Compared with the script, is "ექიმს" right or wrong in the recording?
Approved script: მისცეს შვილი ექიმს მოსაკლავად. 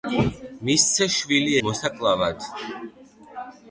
wrong